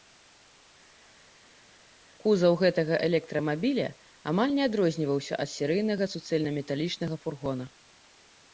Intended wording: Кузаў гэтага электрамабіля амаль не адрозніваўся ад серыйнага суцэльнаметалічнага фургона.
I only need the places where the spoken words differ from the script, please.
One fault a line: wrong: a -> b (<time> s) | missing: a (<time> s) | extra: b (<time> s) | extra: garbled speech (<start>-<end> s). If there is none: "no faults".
no faults